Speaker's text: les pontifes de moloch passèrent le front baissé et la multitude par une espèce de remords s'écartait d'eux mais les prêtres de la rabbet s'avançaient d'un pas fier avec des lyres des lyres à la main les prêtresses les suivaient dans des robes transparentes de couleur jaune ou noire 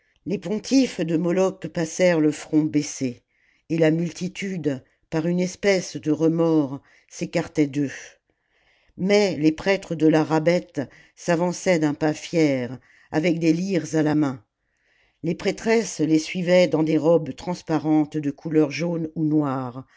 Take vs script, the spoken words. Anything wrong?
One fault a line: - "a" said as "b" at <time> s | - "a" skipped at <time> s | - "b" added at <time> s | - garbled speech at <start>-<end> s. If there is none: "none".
- "des lyres" skipped at 13.9 s